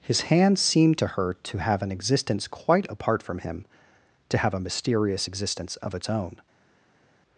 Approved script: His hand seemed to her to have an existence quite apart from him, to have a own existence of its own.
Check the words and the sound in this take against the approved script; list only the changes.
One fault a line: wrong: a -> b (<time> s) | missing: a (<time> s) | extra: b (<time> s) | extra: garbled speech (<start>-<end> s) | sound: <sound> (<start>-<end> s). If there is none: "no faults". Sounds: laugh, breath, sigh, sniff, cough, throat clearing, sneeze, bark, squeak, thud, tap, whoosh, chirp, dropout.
wrong: own -> mysterious (4.6 s)